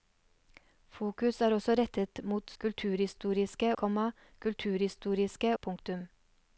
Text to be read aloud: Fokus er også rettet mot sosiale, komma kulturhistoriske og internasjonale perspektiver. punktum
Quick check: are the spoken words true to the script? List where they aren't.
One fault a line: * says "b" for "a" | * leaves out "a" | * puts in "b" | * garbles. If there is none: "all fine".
* says "kulturhistoriske" for "sosiale"
* leaves out "og internasjonale perspektiver"